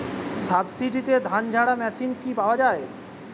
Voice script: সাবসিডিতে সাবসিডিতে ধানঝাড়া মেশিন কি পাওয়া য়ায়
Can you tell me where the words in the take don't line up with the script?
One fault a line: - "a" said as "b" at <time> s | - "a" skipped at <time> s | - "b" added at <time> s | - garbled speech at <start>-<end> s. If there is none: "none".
- "সাবসিডিতে" skipped at 1.1 s